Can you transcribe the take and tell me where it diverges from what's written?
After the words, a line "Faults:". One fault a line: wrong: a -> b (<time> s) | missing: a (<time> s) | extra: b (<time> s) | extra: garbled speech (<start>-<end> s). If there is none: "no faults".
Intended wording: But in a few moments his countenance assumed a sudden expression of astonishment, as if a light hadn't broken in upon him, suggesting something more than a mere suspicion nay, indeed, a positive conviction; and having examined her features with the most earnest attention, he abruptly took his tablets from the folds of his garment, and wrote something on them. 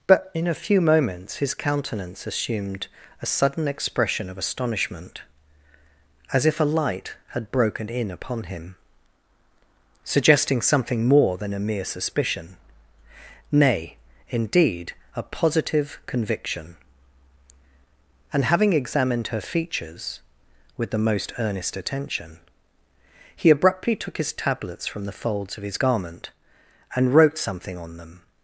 But in a few moments his countenance assumed a sudden expression of astonishment, as if a light had broken in upon him, suggesting something more than a mere suspicion nay, indeed, a positive conviction; and having examined her features with the most earnest attention, he abruptly took his tablets from the folds of his garment, and wrote something on them.
Faults:
wrong: hadn't -> had (7.3 s)